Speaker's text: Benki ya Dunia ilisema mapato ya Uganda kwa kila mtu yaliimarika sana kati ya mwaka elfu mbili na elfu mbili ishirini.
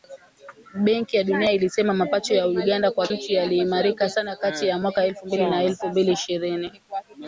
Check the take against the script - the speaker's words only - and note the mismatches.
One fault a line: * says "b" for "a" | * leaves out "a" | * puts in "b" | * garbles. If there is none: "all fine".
* leaves out "kila"